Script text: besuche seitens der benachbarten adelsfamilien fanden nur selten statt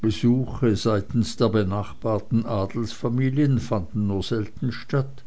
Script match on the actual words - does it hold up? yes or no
yes